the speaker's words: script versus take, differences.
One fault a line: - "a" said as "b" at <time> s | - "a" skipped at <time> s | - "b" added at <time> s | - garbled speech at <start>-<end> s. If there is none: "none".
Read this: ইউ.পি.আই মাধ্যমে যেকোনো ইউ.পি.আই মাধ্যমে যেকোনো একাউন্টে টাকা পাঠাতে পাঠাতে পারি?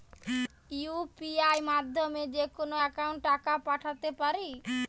- "ইউ.পি.আই মাধ্যমে যেকোনো" skipped at 2.8 s
- "পাঠাতে" skipped at 4.1 s